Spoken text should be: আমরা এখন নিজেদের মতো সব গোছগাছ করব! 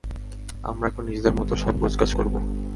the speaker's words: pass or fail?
pass